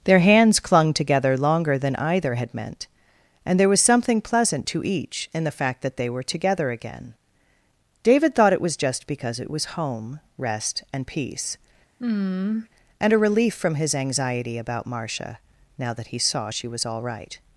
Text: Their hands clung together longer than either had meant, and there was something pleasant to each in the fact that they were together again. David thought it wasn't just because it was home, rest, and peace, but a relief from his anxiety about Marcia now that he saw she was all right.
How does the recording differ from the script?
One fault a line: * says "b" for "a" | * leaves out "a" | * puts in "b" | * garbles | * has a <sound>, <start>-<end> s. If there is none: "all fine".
* says "was" for "wasn't"
* has a sigh, 12.0-12.7 s
* says "and" for "but"